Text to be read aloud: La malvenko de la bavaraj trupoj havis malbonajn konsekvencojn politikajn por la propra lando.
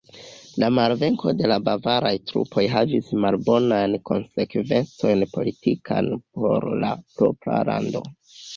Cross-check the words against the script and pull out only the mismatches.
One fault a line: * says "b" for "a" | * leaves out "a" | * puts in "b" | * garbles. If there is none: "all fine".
all fine